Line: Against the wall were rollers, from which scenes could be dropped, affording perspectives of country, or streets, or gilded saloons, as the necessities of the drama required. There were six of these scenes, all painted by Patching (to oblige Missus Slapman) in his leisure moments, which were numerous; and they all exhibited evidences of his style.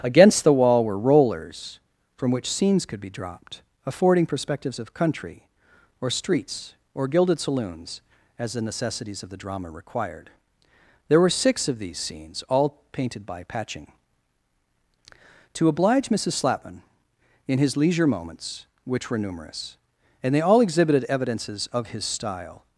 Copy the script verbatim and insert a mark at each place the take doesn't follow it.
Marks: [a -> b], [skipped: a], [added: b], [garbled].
Against the wall were rollers, from which scenes could be dropped, affording perspectives of country, or streets, or gilded saloons, as the necessities of the drama required. There were six of these scenes, all painted by Patching (to oblige Missus Slapman) in his leisure moments, which were numerous; and they all exhibited evidences of his style.